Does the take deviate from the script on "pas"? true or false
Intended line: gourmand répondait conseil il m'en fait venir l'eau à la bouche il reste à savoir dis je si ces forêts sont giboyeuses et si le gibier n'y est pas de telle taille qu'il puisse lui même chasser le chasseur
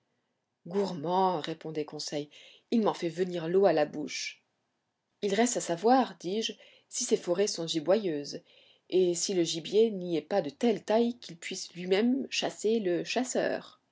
false